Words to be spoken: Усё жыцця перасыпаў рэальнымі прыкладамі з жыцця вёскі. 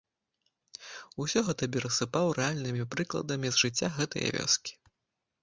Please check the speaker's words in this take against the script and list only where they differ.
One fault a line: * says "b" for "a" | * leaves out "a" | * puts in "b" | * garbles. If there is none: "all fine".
* says "гэта" for "жыцця"
* puts in "гэтае"